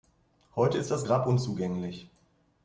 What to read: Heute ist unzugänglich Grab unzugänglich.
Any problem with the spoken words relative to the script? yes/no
yes